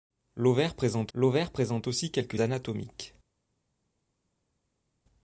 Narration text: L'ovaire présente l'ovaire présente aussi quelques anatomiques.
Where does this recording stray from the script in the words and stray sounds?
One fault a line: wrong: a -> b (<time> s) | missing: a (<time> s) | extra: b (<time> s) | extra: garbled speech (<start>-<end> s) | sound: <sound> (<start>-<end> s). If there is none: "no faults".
no faults